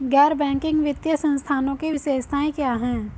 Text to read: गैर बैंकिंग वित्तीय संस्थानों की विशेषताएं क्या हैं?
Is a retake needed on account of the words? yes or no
no